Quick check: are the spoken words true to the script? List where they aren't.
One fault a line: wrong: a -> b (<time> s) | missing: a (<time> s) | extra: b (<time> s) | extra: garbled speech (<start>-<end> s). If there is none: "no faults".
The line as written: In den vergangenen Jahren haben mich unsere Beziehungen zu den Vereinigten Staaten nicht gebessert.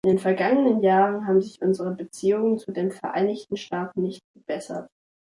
wrong: mich -> sich (1.4 s)